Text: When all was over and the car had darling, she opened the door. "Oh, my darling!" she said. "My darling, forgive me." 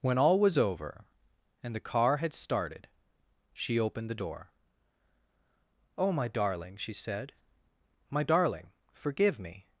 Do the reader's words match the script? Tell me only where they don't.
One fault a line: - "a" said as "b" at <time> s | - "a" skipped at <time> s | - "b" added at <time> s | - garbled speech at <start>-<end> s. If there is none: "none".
- "darling" said as "started" at 2.3 s